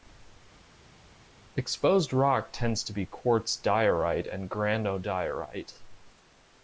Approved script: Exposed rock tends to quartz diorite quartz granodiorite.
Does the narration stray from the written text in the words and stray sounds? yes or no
yes